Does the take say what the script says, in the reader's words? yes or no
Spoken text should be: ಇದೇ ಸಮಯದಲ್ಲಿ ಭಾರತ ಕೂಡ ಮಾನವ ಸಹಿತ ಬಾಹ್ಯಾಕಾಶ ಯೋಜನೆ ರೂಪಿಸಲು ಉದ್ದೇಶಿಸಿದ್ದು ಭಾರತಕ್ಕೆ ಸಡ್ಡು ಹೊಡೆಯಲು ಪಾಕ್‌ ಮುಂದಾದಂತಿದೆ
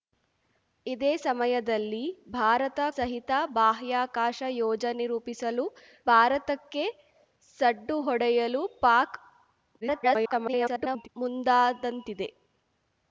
no